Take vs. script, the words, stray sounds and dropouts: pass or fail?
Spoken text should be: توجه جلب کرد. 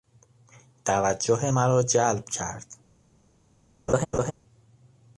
fail